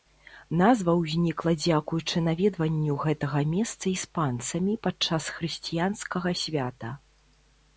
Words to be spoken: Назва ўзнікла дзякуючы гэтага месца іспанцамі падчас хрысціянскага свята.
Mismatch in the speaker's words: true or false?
true